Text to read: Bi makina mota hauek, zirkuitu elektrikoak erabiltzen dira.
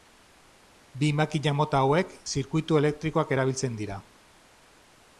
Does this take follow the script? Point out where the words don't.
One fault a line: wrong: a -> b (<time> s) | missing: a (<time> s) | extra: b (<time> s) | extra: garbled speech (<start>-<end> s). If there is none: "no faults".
no faults